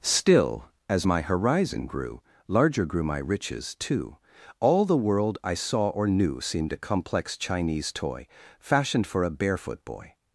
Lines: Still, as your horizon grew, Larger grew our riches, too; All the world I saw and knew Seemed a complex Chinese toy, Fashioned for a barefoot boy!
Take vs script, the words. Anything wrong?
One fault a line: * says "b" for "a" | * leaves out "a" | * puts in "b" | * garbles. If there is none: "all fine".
* says "my" for "your"
* says "my" for "our"
* says "or" for "and"